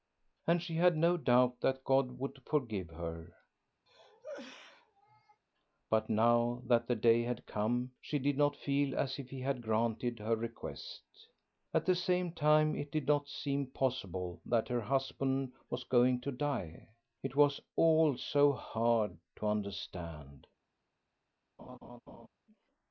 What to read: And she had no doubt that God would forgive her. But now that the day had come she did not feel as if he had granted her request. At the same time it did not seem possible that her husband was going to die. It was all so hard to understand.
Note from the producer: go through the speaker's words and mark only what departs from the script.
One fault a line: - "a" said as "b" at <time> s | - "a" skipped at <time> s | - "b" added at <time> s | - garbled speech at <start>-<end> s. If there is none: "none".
none